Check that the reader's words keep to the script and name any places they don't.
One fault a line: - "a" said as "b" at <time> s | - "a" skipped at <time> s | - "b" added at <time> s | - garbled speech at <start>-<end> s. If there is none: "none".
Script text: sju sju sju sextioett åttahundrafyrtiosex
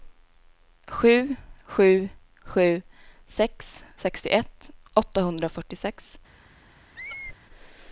- "sex" added at 3.3 s